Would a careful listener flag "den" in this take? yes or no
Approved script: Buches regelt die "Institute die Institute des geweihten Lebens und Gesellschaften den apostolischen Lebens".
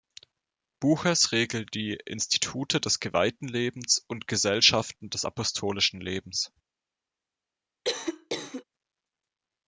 yes